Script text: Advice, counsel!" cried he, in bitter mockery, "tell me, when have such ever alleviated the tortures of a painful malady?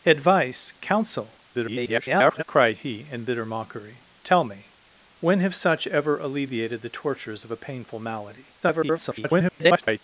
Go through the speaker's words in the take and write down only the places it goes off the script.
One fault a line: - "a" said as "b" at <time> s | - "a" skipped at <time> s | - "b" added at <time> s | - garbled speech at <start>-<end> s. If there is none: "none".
- garbled speech at 1.5-2.4 s
- garbled speech at 8.6-10.0 s